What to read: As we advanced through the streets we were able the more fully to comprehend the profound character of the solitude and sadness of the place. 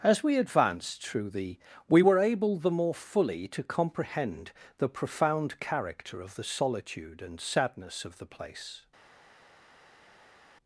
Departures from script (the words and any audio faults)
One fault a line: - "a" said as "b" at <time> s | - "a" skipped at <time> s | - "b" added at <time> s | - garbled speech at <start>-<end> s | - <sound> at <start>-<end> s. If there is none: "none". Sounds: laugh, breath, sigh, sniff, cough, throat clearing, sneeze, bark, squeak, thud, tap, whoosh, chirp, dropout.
- "streets" skipped at 1.6 s